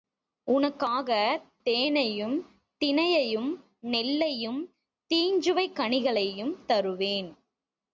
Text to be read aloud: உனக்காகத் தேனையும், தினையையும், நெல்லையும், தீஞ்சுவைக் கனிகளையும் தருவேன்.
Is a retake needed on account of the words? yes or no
no